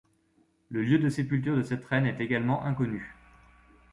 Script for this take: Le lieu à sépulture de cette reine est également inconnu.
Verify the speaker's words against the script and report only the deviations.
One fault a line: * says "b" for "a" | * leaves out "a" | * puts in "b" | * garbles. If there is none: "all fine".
* says "de" for "à"